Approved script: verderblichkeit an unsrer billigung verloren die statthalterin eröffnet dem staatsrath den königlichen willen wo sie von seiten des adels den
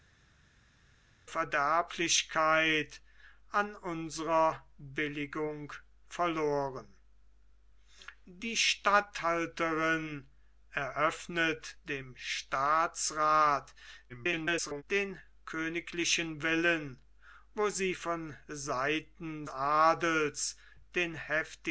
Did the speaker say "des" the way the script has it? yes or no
no